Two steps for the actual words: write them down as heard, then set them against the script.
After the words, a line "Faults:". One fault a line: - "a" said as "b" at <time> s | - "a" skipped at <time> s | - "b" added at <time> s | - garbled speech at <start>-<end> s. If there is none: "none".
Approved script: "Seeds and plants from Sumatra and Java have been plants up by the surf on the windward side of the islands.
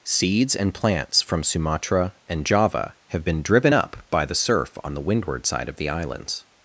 "Seeds and plants from Sumatra and Java have been driven up by the surf on the windward side of the islands.
Faults:
- "plants" said as "driven" at 3.4 s